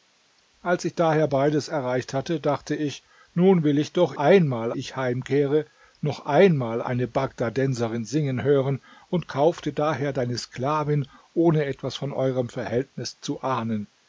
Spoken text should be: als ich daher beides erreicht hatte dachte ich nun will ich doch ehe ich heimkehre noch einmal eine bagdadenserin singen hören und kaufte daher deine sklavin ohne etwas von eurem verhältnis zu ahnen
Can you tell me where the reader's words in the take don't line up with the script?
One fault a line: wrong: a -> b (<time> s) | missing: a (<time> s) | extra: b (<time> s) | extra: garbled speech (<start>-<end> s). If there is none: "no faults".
wrong: ehe -> einmal (4.2 s)